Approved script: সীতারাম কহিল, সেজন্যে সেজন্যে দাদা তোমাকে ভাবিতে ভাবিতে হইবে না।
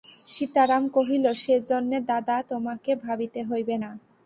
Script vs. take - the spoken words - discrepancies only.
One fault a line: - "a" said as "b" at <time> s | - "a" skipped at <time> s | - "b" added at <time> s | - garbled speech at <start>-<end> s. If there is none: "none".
- "সেজন্যে" skipped at 2.0 s
- "ভাবিতে" skipped at 3.4 s